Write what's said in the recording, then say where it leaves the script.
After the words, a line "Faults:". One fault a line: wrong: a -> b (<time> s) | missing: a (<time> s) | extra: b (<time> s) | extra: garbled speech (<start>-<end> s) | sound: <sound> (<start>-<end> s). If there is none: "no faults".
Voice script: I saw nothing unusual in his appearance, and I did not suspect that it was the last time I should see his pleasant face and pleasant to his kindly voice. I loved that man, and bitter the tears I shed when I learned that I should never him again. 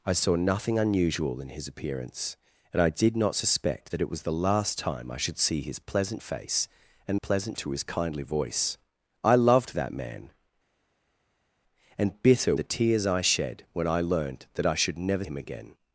I saw nothing unusual in his appearance, and I did not suspect that it was the last time I should see his pleasant face and pleasant to his kindly voice. I loved that man, and bitter the tears I shed when I learned that I should never him again.
Faults:
no faults